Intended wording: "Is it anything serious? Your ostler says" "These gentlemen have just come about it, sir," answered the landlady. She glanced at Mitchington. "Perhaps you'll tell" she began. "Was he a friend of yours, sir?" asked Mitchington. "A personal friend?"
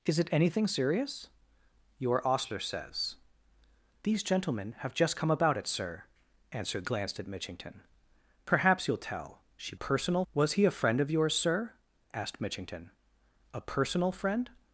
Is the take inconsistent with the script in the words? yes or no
yes